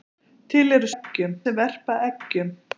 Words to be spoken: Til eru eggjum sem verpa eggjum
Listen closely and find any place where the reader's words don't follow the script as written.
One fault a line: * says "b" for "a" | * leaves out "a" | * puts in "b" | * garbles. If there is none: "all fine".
all fine